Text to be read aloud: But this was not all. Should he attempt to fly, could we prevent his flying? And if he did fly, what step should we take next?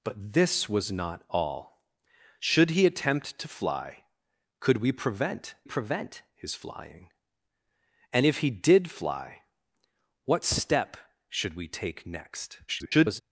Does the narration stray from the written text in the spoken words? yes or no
yes